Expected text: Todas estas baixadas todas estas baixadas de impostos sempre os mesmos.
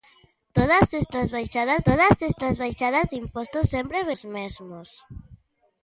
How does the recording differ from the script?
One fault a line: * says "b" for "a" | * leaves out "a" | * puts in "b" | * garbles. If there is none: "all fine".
all fine